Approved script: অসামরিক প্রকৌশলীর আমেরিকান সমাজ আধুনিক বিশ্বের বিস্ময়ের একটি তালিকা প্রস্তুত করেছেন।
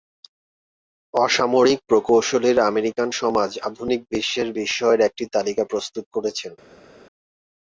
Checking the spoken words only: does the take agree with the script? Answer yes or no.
yes